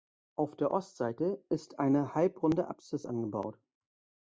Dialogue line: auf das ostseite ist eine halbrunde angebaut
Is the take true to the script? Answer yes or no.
no